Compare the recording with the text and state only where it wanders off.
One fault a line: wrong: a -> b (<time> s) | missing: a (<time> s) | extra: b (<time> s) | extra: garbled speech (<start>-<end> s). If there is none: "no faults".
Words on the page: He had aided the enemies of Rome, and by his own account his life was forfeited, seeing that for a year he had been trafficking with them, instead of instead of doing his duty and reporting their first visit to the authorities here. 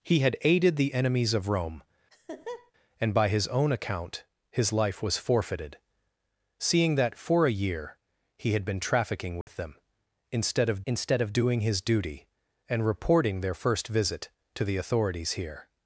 no faults